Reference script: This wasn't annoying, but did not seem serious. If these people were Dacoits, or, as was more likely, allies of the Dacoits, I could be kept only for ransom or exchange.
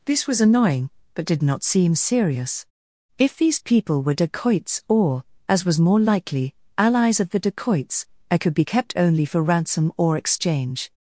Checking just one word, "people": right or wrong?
right